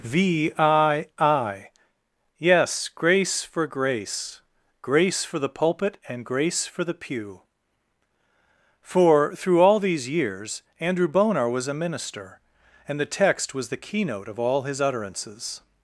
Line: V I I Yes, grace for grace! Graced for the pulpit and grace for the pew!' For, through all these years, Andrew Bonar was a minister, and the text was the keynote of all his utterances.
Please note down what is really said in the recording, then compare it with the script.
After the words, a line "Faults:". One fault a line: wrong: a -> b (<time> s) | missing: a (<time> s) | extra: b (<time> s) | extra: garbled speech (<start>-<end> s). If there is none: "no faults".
V I I Yes, grace for grace! Grace for the pulpit and grace for the pew!' For, through all these years, Andrew Bonar was a minister, and the text was the keynote of all his utterances.
Faults:
wrong: Graced -> Grace (4.8 s)